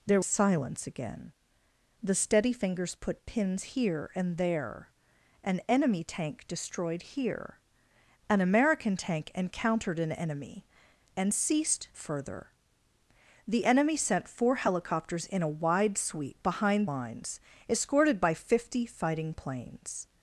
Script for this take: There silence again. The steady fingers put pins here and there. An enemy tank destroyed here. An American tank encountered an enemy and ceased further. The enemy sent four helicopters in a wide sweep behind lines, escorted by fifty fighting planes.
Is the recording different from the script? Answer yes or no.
no